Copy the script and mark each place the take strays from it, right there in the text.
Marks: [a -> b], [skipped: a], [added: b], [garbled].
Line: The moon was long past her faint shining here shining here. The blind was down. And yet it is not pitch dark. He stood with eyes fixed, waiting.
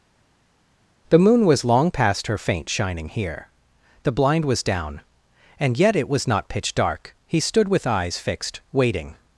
The moon was long past her faint shining here [skipped: shining here.] The blind was down. And yet it [is -> was] not pitch dark. He stood with eyes fixed, waiting.